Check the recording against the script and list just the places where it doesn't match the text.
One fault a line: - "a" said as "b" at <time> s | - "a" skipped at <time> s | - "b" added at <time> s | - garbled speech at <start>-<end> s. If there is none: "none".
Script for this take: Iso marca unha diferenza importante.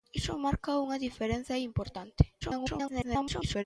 - garbled speech at 2.4-3.6 s